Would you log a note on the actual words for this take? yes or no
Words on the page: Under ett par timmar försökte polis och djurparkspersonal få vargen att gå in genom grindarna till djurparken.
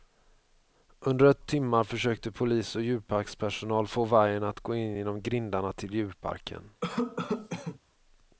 yes